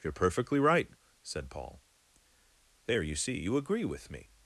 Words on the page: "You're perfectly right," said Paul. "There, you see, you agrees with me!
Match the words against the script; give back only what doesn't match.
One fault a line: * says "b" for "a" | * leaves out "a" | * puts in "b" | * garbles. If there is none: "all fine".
* says "agree" for "agrees"